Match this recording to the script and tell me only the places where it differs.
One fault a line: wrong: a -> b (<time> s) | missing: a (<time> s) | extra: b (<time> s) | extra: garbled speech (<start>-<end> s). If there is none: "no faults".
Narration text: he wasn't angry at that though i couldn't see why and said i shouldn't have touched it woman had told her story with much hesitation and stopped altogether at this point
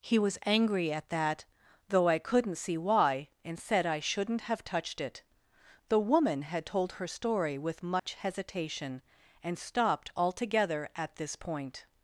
wrong: wasn't -> was (0.2 s)
extra: the (5.9 s)